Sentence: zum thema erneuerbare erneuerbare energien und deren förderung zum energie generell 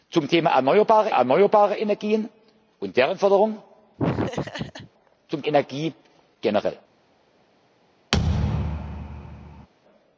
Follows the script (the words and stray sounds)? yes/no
no